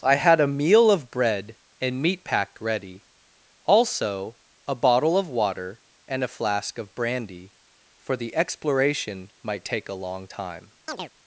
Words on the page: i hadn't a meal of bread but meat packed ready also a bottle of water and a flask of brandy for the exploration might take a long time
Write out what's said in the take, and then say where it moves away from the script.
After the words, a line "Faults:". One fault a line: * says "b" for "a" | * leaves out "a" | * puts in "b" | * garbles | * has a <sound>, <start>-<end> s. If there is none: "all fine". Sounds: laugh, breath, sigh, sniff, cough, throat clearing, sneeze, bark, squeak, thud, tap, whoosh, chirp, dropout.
i had a meal of bread and meat packed ready also a bottle of water and a flask of brandy for the exploration might take a long time
Faults:
* says "had" for "hadn't"
* says "and" for "but"
* has a chirp, 10.9-11.1 s